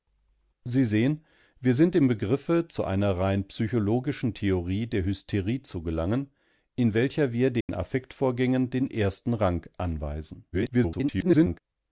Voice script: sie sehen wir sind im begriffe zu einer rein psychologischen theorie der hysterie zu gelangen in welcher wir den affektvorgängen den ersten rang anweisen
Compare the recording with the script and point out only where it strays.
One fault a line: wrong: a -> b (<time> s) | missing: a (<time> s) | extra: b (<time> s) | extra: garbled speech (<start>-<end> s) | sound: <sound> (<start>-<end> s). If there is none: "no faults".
sound: dropout (7.6-7.7 s)
extra: garbled speech (10.5-11.6 s)